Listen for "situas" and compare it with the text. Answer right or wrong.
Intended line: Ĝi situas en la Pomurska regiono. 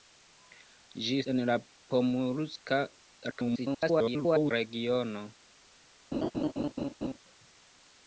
wrong